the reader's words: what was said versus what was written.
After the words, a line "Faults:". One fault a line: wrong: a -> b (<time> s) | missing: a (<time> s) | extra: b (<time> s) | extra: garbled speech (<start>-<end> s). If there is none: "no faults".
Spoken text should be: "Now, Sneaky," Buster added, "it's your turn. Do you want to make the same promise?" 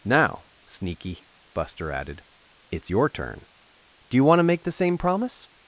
"Now, Sneaky," Buster added, "it's your turn. Do you want to make the same promise?"
Faults:
no faults